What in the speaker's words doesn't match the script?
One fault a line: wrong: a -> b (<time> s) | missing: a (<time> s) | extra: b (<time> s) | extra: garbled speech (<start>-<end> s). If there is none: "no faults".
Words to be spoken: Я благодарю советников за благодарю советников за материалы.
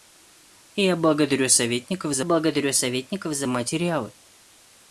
no faults